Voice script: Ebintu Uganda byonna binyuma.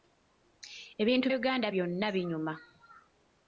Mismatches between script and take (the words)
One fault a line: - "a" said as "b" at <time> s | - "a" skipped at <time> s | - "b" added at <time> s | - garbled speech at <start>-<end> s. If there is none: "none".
none